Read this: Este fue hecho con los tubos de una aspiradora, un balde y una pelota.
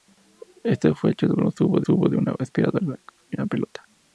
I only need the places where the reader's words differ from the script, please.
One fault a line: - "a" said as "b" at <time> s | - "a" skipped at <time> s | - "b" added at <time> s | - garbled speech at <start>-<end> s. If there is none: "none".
- "tubos" added at 1.8 s
- "un balde" skipped at 3.0 s